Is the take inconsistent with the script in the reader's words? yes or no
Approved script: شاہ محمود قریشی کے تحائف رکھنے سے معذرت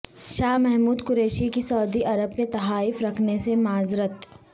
yes